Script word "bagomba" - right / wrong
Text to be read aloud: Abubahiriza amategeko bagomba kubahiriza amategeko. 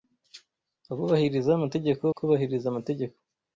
wrong